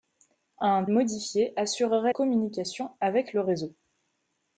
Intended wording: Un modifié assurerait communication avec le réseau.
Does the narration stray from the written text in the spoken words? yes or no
no